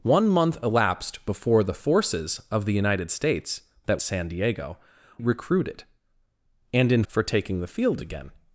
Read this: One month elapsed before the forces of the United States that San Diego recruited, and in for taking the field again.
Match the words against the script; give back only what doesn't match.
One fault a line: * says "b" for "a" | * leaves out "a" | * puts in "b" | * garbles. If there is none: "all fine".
all fine